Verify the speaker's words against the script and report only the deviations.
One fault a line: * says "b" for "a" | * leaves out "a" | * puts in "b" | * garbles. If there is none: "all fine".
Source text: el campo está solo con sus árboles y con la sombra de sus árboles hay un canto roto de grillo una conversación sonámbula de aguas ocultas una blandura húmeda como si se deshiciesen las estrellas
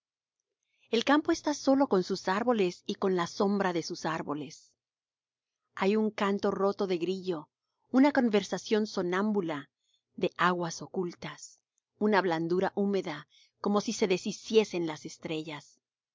all fine